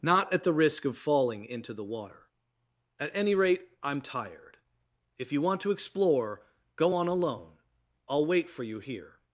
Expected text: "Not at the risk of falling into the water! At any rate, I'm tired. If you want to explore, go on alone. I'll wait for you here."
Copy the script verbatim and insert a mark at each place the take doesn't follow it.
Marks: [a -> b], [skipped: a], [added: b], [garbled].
"Not at the risk of falling into the water! At any rate, I'm tired. If you want to explore, go on alone. I'll wait for you here."